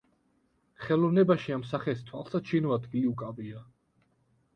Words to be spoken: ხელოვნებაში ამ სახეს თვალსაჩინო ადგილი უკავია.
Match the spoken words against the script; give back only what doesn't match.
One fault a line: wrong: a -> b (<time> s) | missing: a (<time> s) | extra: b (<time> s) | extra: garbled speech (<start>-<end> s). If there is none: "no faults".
no faults